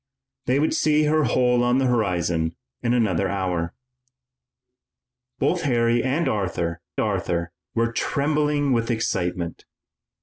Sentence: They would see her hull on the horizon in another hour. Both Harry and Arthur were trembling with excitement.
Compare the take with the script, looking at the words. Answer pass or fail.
fail